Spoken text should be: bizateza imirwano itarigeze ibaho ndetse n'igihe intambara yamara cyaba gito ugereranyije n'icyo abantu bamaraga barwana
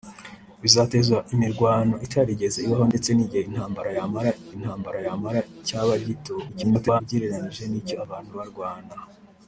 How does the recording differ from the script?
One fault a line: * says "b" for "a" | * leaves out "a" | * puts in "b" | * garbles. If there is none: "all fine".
* puts in "intambara yamara"
* garbles
* leaves out "bamaraga"